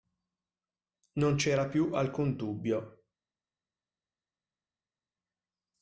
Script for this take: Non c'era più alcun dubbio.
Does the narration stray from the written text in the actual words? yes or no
no